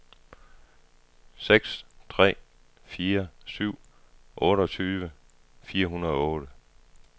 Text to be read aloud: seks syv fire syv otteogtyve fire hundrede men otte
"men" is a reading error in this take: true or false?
true